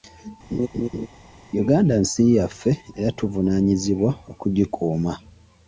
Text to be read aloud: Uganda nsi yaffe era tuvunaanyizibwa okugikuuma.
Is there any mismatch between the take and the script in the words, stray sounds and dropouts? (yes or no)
yes